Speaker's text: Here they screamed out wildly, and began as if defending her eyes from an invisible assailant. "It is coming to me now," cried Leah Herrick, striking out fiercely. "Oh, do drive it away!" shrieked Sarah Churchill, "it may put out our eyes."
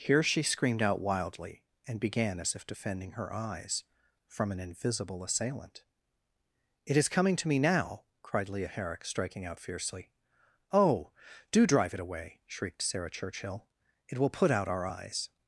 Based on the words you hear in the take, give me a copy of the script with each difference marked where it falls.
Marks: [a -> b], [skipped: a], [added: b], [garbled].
Here [they -> she] screamed out wildly, and began as if defending her eyes from an invisible assailant. "It is coming to me now," cried Leah Herrick, striking out fiercely. "Oh, do drive it away!" shrieked Sarah Churchill, "it [may -> will] put out our eyes."